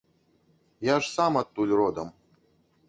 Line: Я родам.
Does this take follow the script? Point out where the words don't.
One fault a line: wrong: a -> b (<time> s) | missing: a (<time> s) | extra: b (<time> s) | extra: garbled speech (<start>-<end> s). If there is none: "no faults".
extra: ж сам адтуль (1.0 s)